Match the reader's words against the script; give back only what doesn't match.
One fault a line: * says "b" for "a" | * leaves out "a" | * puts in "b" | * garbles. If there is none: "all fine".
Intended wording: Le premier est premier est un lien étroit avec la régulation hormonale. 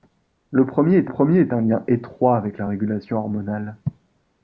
all fine